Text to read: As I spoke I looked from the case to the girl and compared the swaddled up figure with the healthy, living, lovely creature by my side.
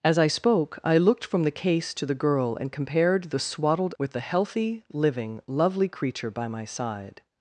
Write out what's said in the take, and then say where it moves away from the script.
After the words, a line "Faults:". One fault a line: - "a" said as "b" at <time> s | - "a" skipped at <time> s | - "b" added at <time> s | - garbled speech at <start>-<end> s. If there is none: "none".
As I spoke I looked from the case to the girl and compared the swaddled with the healthy, living, lovely creature by my side.
Faults:
- "up figure" skipped at 3.9 s